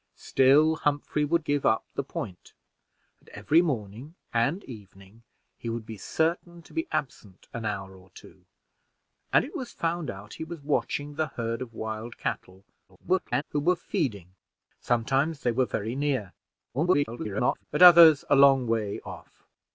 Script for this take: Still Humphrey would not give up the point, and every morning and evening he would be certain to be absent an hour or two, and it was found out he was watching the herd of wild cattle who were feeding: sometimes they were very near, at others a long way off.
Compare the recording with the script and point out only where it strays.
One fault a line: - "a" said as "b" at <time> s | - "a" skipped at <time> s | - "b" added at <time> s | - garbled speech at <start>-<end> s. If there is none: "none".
- "not" skipped at 1.4 s
- garbled speech at 12.9-13.4 s
- garbled speech at 16.7-17.6 s